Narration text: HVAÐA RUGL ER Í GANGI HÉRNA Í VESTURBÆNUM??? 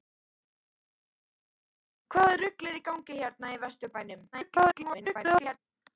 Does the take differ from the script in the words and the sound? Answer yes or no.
yes